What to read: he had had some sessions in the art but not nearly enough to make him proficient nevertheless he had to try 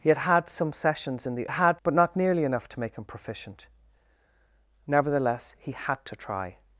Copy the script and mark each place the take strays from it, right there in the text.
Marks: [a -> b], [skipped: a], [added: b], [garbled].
he had had some sessions in the [art -> had] but not nearly enough to make him proficient nevertheless he had to try